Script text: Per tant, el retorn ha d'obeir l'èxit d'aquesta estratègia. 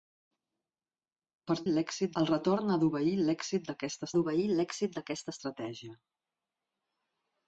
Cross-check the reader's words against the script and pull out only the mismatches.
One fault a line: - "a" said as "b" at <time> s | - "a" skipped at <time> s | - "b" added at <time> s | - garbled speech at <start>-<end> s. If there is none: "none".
- "tant" said as "l'èxit" at 1.7 s
- "d'obeir l'èxit d'aquesta" added at 4.2 s